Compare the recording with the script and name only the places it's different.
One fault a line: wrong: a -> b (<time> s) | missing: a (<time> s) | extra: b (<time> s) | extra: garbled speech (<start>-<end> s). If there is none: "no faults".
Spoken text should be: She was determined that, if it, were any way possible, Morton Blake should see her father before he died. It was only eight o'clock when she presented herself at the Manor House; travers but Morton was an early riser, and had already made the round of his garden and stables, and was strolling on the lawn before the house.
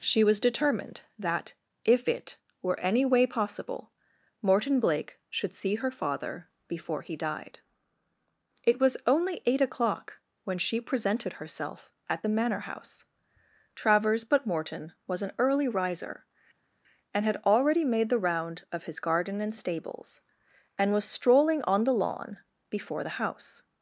no faults